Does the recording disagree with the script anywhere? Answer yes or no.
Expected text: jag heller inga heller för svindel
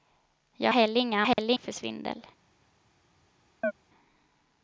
no